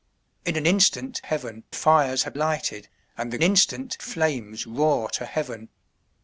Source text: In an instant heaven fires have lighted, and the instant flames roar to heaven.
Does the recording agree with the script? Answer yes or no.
yes